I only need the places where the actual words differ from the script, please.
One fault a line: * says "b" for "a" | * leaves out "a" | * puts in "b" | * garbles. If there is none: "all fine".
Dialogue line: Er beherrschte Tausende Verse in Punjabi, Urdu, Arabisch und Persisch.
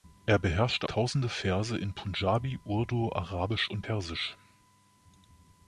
all fine